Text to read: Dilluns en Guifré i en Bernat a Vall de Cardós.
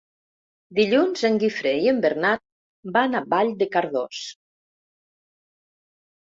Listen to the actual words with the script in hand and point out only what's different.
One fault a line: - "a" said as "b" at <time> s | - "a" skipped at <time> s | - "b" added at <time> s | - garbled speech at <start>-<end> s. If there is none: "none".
- "van" added at 3.0 s